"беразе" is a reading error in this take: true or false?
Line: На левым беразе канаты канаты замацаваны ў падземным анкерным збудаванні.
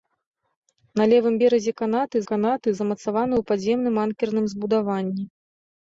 false